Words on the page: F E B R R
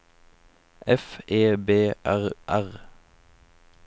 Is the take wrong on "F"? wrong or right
right